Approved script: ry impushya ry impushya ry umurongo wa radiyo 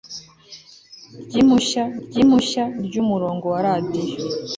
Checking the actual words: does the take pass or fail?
pass